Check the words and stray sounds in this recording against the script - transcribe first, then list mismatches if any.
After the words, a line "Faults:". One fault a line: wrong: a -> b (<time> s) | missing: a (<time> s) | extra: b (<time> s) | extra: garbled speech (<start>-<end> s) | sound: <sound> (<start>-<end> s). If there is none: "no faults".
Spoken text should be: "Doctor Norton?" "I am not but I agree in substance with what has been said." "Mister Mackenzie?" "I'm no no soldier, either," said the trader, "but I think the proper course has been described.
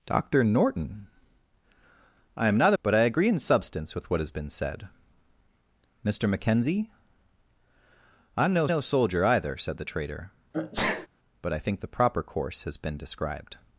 "Doctor Norton?" "I am not but I agree in substance with what has been said." "Mister Mackenzie?" "I'm no no soldier, either," said the trader, "but I think the proper course has been described.
Faults:
sound: sneeze (10.5-11.1 s)